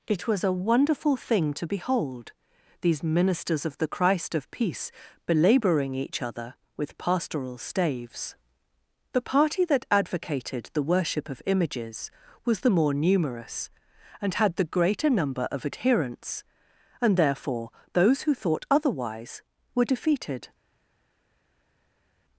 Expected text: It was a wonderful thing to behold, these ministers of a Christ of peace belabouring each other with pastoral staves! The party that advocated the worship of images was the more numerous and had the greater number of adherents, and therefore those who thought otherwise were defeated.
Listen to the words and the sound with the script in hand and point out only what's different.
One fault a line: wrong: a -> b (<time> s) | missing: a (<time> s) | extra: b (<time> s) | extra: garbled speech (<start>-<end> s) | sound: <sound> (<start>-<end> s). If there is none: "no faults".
wrong: a -> the (3.8 s)